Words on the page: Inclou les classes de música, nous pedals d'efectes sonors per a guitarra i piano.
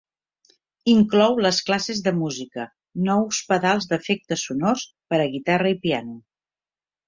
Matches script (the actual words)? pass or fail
pass